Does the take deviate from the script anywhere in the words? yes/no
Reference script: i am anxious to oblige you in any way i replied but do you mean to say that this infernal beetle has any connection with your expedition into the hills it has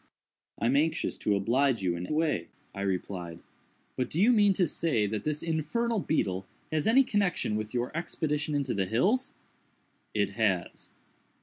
yes